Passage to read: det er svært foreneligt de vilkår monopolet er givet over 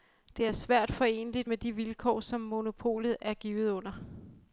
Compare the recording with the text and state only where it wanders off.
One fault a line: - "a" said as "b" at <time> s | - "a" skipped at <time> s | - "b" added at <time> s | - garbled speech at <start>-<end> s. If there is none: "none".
- "med" added at 1.5 s
- "som" added at 2.2 s
- "over" said as "under" at 3.7 s